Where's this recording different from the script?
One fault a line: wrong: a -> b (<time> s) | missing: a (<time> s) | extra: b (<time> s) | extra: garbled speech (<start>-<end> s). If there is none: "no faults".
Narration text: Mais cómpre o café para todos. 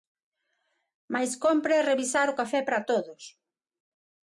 extra: revisar (1.9 s)